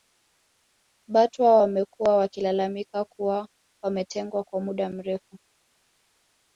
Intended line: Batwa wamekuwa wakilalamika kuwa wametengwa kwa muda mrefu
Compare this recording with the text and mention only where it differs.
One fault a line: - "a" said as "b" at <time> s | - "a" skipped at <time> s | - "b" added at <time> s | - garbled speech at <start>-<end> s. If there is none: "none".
none